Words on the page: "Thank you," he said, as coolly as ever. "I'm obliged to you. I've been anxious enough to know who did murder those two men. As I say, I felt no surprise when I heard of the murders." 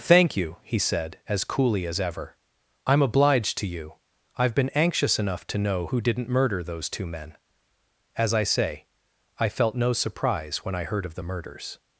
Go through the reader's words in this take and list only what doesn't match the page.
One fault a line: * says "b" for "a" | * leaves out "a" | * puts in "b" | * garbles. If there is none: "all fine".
* says "didn't" for "did"